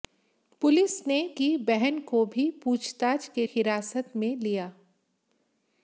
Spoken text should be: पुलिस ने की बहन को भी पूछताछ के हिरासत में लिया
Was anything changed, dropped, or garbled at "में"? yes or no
no